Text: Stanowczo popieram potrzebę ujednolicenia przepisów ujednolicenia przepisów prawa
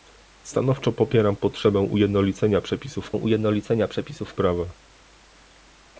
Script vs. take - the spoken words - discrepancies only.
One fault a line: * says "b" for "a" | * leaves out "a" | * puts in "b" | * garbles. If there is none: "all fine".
all fine